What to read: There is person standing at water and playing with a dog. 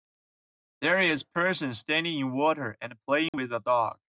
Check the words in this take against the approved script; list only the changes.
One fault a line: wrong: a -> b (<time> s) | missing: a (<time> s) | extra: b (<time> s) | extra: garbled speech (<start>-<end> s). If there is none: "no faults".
wrong: at -> in (2.2 s)